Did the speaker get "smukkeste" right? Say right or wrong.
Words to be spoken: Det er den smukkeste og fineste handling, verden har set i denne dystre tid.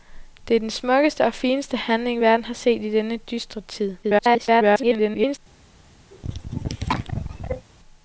right